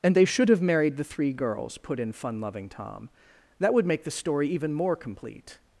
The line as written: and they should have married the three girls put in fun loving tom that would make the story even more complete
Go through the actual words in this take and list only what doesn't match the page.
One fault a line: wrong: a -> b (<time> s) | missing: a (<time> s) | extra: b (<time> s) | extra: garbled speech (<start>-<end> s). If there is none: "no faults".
no faults